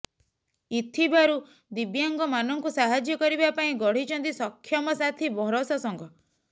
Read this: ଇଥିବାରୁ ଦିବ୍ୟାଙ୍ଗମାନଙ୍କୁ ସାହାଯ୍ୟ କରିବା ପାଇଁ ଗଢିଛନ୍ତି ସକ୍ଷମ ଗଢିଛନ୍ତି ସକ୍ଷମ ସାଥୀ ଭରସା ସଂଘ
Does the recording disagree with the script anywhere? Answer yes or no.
yes